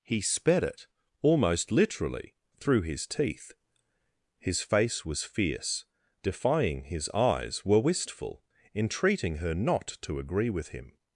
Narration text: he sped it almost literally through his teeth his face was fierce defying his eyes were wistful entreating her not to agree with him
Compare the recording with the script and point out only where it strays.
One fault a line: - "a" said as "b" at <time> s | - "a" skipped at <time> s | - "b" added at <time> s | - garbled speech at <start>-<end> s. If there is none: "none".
none